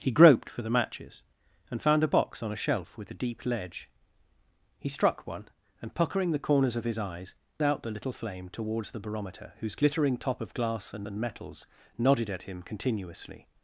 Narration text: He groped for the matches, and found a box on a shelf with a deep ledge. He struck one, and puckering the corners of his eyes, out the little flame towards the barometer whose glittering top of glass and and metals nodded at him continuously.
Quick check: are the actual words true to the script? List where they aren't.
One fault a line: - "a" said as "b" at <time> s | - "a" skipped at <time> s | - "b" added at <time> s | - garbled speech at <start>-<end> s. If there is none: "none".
none